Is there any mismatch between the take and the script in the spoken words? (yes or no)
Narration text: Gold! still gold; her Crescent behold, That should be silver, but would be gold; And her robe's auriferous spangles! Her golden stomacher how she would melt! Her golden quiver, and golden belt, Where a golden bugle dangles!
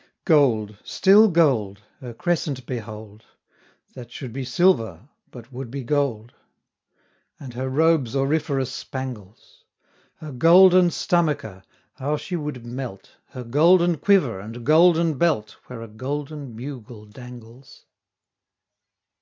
no